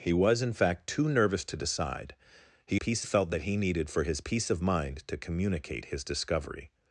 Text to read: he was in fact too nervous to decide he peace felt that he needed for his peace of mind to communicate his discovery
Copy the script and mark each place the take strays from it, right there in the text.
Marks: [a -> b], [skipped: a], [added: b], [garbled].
he was in fact too nervous to decide he peace felt that he needed for his peace of mind to communicate his discovery